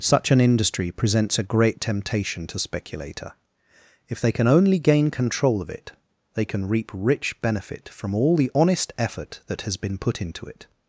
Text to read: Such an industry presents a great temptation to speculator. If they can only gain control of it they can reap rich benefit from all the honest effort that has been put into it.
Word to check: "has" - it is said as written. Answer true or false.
true